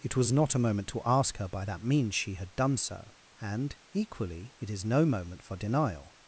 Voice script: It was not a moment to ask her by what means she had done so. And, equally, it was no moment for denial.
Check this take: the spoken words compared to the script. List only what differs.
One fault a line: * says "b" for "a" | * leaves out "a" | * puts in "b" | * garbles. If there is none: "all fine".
* says "that" for "what"
* says "is" for "was"